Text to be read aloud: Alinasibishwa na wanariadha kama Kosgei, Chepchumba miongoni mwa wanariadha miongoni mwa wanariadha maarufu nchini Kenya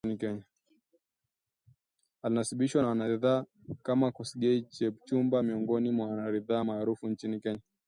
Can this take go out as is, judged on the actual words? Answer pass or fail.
fail